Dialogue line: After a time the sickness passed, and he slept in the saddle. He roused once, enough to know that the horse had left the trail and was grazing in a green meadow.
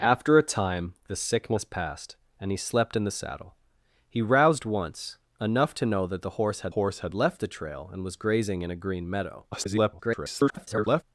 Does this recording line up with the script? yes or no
no